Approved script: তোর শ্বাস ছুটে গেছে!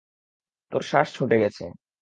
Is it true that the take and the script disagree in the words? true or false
false